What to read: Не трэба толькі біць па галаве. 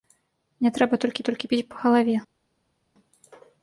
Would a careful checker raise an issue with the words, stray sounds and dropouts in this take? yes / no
yes